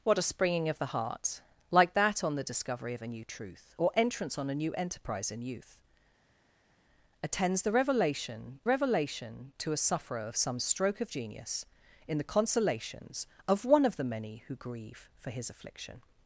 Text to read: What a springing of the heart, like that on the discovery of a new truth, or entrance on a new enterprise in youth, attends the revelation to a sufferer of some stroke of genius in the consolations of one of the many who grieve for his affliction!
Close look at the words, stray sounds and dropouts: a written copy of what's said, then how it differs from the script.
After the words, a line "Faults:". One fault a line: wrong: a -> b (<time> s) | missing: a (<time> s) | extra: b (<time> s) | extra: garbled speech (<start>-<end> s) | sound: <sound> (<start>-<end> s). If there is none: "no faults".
What a springing of the heart, like that on the discovery of a new truth, or entrance on a new enterprise in youth, attends the revelation revelation to a sufferer of some stroke of genius in the consolations of one of the many who grieve for his affliction!
Faults:
extra: revelation (8.7 s)